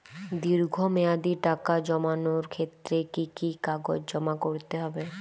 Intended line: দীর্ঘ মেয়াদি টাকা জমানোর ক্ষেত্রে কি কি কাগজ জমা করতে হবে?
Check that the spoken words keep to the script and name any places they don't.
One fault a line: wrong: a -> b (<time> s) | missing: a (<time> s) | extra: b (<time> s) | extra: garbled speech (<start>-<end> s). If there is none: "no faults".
no faults